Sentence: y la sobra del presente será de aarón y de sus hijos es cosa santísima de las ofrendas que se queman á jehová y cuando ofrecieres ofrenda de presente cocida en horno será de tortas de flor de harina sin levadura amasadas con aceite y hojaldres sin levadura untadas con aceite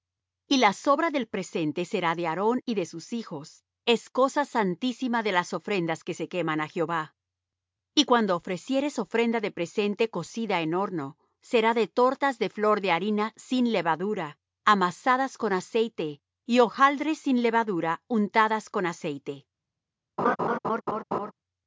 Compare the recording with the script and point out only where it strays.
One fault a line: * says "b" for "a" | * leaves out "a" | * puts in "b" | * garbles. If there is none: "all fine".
all fine